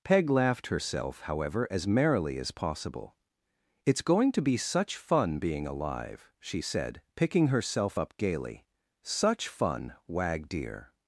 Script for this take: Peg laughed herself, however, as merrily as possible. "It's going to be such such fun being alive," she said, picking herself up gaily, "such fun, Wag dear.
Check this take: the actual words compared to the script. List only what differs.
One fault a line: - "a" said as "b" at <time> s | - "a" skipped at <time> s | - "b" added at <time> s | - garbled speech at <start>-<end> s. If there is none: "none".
- "such" skipped at 5.0 s